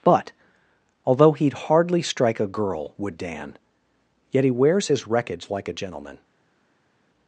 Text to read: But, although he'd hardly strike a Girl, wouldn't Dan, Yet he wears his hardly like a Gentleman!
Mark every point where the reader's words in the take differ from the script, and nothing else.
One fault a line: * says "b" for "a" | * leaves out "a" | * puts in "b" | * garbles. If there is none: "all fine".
* says "would" for "wouldn't"
* says "wreckage" for "hardly"